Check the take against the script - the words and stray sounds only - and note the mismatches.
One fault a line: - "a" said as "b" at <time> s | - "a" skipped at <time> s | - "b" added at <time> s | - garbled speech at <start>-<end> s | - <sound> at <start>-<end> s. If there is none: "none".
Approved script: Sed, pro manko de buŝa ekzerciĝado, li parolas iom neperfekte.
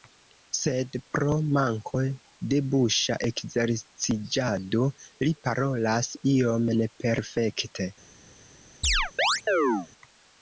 - chirp at 8.8-9.9 s